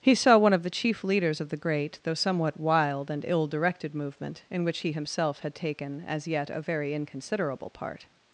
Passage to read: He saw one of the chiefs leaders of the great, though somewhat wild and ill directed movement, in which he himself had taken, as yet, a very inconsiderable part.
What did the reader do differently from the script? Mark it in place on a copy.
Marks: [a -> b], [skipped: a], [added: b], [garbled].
He saw one of the [chiefs -> chief] leaders of the great, though somewhat wild and ill directed movement, in which he himself had taken, as yet, a very inconsiderable part.